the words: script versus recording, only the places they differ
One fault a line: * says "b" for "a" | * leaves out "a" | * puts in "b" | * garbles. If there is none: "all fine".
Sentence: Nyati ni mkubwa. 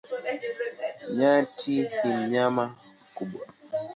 * puts in "mnyama"